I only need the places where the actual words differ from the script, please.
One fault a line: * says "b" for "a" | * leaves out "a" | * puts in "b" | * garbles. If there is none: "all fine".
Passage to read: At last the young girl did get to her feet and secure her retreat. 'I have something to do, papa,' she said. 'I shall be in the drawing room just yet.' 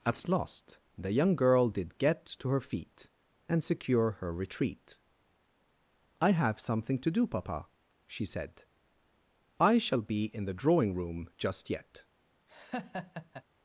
all fine